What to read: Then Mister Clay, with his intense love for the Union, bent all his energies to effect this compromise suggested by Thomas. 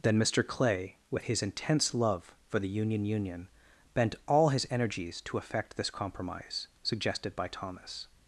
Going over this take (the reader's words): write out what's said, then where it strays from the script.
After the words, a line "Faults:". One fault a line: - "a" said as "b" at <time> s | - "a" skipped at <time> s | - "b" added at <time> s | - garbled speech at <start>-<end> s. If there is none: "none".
Then Mister Clay, with his intense love for the Union Union, bent all his energies to effect this compromise suggested by Thomas.
Faults:
- "Union" added at 3.0 s